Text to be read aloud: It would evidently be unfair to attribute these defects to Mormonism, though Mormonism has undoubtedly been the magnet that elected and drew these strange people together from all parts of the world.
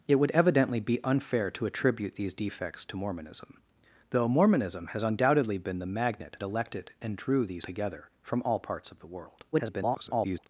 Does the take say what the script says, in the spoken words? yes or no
no